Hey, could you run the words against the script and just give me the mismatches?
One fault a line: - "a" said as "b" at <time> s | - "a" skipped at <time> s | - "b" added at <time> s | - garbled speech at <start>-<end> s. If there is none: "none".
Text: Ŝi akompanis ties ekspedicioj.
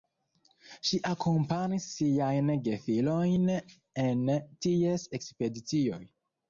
- "siajn gefilojn en" added at 2.0 s